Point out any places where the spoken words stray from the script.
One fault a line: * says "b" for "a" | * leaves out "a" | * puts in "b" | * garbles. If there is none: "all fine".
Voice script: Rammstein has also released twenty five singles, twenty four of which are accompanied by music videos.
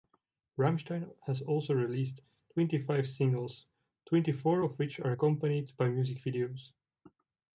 all fine